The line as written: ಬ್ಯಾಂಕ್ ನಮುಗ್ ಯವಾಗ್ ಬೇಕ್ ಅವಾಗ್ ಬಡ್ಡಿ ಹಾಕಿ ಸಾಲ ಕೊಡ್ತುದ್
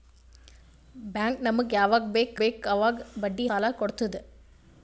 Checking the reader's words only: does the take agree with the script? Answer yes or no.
no